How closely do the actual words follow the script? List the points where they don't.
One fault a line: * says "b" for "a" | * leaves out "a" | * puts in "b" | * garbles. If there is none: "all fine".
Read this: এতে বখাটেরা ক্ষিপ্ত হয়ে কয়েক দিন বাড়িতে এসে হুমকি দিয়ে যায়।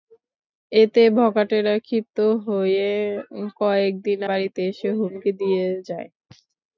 all fine